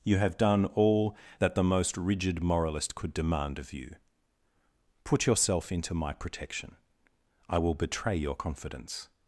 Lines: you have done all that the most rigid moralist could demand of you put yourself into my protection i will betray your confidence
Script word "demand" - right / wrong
right